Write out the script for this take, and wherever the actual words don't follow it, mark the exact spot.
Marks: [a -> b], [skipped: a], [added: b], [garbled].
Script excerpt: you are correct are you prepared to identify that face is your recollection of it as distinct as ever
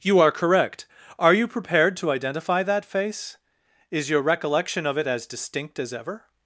you are correct are you prepared to identify that face is your recollection of it as distinct as ever